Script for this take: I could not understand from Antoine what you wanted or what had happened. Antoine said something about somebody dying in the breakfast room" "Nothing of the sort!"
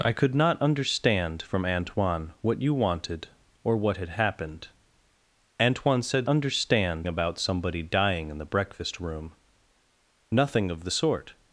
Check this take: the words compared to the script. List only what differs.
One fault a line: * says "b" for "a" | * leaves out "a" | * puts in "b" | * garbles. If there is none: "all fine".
* says "understand" for "something"